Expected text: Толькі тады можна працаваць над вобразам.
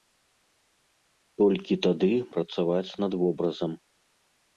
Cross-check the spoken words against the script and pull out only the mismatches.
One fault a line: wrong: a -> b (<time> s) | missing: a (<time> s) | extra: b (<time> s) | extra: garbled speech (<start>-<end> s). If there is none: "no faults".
missing: можна (2.1 s)